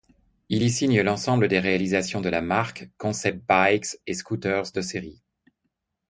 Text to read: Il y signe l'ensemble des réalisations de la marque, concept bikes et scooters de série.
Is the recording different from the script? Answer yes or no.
no